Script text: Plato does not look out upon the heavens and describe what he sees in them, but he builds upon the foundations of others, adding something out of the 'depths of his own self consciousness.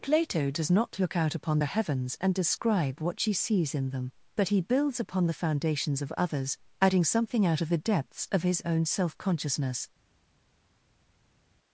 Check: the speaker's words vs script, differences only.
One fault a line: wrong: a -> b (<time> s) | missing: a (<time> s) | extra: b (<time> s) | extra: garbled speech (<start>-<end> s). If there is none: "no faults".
wrong: he -> she (3.2 s)